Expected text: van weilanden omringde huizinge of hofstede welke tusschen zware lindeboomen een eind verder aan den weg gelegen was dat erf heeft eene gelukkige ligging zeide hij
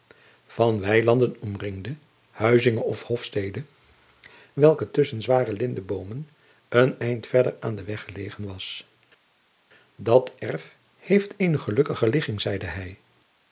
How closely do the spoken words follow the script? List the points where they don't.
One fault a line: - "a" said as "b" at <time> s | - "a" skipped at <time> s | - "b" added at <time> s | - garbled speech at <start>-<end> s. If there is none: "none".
none